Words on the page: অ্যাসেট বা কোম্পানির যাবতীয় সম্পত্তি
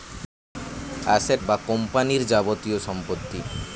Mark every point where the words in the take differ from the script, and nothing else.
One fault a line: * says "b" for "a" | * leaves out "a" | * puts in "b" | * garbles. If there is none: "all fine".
all fine